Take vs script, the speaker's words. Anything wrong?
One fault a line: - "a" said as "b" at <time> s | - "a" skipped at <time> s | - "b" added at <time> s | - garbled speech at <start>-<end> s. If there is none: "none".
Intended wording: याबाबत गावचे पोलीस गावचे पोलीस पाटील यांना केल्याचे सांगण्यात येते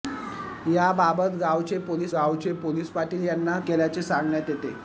none